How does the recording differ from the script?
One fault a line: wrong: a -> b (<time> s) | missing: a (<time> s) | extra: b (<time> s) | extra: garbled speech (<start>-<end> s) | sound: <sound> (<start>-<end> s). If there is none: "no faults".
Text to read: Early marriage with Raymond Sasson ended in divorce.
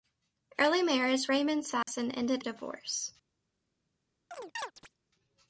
missing: with (1.3 s)
sound: dropout (1.8-1.9 s)
missing: in (2.4 s)
sound: chirp (4.3-5.0 s)